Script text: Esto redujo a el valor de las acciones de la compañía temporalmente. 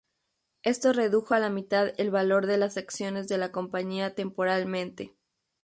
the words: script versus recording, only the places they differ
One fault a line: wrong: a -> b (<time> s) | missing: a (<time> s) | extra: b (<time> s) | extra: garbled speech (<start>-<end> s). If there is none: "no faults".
extra: la mitad (1.4 s)